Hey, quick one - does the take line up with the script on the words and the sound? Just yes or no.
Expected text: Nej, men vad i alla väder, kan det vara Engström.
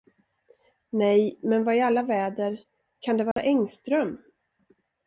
no